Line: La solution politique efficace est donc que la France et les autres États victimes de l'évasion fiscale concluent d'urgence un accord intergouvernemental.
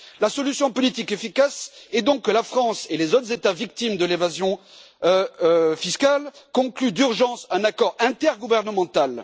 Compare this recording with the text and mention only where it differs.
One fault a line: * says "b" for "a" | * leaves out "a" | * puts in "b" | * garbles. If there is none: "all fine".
all fine